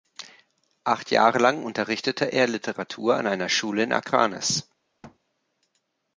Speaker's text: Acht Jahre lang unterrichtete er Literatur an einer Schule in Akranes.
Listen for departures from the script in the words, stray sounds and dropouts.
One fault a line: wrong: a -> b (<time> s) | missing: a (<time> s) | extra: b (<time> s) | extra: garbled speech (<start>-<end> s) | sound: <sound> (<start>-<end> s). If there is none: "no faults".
sound: thud (5.0-5.2 s)